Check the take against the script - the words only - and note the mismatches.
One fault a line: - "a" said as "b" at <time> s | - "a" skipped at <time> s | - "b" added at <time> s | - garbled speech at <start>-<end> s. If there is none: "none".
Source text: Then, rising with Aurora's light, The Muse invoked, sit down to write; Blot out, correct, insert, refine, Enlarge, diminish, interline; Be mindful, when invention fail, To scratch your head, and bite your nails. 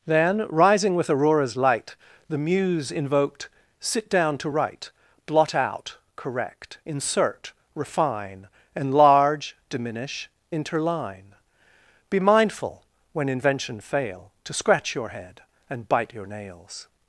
none